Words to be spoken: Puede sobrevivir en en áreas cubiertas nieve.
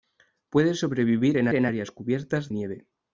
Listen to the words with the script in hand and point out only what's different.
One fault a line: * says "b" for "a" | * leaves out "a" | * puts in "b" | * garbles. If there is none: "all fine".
all fine